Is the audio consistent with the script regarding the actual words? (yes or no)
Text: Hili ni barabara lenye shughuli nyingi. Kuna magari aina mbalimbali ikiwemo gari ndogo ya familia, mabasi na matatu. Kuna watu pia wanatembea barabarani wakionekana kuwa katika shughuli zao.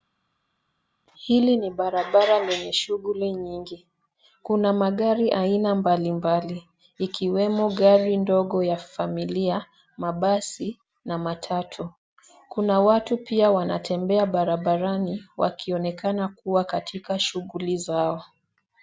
yes